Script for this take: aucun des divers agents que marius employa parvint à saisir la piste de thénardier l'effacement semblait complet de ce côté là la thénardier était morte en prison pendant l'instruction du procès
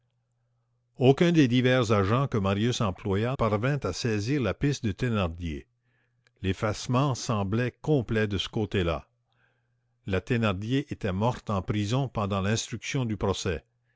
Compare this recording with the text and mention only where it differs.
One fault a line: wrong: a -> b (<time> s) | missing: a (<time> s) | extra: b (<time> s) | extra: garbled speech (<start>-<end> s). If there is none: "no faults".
no faults